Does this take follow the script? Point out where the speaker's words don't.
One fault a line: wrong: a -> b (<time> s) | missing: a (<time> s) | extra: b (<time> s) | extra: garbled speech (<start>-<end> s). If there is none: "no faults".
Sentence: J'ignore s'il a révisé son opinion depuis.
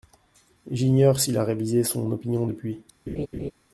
no faults